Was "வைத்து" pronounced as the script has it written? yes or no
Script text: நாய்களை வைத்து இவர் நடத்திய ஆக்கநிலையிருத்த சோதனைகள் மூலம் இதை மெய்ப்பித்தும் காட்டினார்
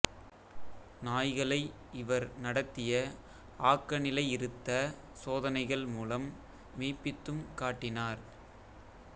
no